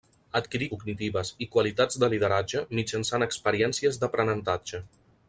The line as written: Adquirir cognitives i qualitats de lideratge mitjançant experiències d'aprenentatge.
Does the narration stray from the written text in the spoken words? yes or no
no